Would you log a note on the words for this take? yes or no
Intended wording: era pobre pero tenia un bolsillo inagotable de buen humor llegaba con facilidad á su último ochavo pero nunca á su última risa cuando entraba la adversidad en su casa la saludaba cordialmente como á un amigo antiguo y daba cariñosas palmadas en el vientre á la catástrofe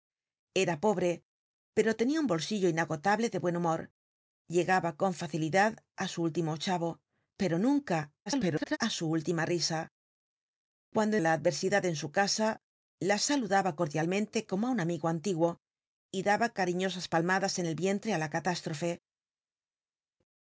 yes